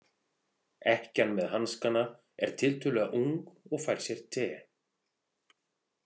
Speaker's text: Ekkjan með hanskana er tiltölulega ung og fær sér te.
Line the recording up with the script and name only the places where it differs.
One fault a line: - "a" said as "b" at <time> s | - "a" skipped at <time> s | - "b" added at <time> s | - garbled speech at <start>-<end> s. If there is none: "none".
none